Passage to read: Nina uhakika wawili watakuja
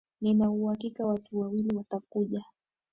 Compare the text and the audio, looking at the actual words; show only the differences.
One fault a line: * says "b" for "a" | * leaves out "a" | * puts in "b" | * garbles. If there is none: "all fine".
* puts in "watu"